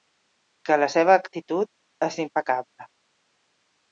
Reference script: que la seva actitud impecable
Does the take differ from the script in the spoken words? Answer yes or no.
yes